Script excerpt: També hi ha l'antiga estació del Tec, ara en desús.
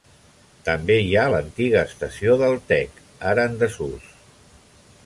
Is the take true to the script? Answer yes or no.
yes